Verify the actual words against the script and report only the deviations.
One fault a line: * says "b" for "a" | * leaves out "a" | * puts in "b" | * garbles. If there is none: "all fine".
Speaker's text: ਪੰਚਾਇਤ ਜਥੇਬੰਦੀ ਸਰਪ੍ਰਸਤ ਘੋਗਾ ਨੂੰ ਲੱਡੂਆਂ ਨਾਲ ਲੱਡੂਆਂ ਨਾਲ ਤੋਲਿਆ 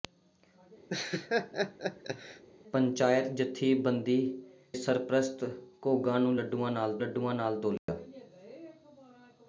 all fine